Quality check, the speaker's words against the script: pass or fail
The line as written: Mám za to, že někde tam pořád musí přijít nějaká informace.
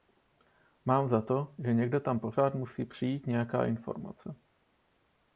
pass